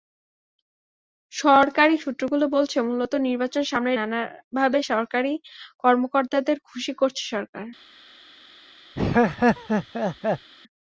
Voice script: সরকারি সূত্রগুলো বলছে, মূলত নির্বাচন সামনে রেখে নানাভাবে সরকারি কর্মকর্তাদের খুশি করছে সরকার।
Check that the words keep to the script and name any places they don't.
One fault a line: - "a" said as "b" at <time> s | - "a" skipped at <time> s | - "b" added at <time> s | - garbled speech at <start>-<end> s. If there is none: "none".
- "রেখে" skipped at 3.9 s